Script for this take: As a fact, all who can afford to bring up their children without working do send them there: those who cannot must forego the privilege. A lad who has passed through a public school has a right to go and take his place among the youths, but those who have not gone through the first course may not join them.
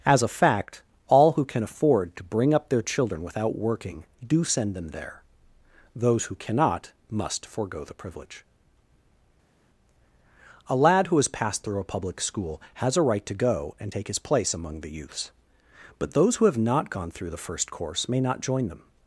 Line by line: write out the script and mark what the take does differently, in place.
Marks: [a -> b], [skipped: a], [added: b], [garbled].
As a fact, all who can afford to bring up their children without working do send them there: those who cannot must forego the privilege. A lad who has passed through a public school has a right to go and take his place among the youths, but those who have not gone through the first course may not join them.